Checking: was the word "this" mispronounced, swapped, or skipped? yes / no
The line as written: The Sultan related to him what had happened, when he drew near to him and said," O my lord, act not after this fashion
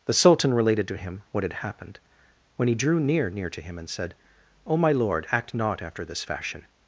no